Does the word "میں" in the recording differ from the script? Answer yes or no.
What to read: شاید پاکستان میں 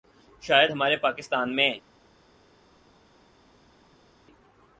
no